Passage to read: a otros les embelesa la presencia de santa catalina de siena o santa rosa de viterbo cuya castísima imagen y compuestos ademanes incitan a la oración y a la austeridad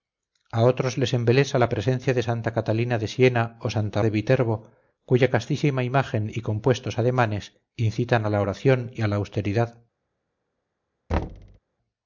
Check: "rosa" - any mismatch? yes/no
yes